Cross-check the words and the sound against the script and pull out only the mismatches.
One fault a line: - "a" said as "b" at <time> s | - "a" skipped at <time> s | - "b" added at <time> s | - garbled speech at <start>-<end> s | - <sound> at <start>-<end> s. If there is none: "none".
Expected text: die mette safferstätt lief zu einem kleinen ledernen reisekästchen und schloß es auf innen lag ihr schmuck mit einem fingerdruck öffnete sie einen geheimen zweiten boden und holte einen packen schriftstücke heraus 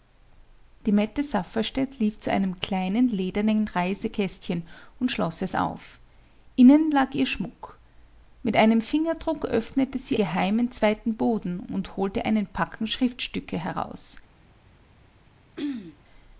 - "einen" skipped at 10.2 s
- throat clearing at 15.6-16.0 s